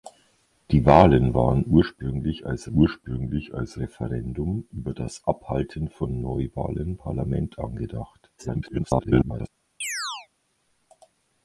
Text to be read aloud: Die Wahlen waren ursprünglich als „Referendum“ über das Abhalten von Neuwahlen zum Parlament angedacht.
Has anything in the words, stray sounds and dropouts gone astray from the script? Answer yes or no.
yes